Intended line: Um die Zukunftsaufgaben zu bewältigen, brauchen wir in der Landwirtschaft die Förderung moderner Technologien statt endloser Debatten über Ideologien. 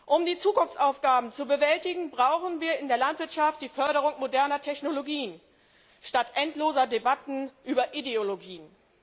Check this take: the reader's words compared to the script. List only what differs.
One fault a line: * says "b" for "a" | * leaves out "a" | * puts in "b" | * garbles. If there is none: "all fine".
all fine